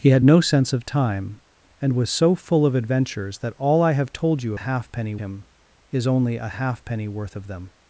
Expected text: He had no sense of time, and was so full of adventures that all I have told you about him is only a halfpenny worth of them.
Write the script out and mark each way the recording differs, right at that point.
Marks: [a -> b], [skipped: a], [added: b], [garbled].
He had no sense of time, and was so full of adventures that all I have told you [about -> halfpenny] him is only a halfpenny worth of them.